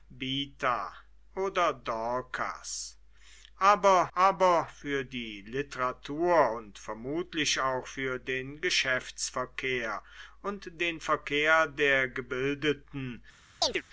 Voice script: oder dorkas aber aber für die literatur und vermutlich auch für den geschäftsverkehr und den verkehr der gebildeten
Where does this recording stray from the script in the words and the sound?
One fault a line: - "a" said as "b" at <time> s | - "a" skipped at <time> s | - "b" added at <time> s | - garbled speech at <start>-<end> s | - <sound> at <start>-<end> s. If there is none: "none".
- chirp at 13.6-13.8 s